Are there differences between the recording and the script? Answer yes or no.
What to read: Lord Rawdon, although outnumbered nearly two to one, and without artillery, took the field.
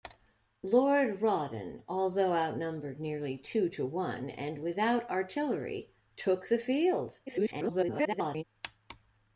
yes